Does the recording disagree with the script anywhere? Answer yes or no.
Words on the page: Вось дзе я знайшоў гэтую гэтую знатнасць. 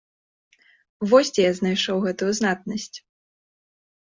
yes